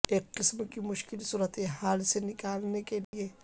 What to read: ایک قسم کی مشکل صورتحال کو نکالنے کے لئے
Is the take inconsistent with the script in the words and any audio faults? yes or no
yes